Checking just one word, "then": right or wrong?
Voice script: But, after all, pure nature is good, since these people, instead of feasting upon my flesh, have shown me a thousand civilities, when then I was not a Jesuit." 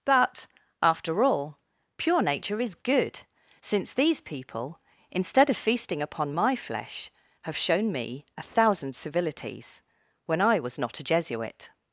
wrong